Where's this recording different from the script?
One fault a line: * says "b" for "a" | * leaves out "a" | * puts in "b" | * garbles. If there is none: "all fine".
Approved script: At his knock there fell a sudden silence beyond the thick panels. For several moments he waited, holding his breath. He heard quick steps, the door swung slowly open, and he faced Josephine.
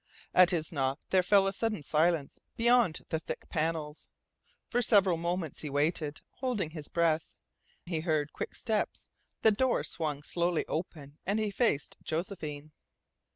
all fine